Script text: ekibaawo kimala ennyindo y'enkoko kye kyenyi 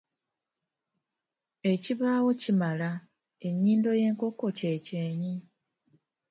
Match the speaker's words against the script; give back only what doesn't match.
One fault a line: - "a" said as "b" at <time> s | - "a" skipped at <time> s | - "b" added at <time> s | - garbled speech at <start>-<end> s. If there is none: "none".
none